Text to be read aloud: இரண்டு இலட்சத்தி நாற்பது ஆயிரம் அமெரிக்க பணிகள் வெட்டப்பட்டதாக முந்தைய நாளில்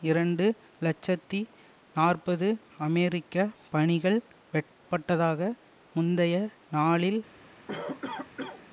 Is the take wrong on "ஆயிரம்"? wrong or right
wrong